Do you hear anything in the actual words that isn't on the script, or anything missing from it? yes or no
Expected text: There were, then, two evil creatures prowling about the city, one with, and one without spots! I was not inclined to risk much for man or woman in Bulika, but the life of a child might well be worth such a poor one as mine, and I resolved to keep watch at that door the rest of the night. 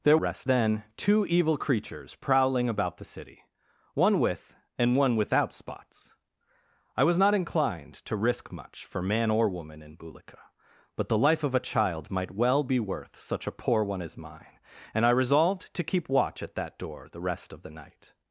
yes